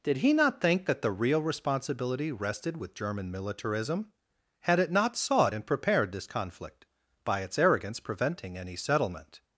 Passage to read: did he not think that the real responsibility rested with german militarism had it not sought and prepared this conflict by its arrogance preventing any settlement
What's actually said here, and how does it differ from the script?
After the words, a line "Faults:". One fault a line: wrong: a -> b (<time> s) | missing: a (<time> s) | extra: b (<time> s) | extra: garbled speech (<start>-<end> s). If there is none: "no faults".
did he not think that the real responsibility rested with german militarism had it not sought and prepared this conflict by its arrogance preventing any settlement
Faults:
no faults